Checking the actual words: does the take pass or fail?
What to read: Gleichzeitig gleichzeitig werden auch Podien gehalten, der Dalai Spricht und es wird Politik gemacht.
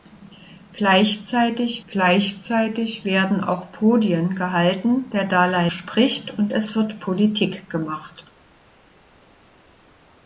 pass